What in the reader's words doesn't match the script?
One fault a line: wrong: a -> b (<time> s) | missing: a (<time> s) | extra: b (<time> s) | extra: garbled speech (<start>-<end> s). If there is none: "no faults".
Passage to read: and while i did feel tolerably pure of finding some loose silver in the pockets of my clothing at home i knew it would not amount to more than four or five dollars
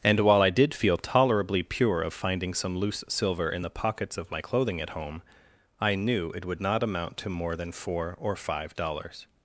no faults